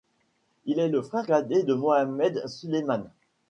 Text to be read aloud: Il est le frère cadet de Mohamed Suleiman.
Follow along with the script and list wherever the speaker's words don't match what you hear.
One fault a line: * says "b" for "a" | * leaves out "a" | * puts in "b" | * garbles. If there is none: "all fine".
all fine